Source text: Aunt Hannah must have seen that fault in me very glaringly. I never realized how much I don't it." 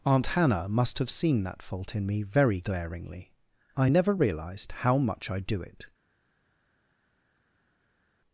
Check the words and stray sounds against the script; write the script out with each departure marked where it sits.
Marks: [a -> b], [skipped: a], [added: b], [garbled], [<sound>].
Aunt Hannah must have seen that fault in me very glaringly. I never realized how much I [don't -> do] it."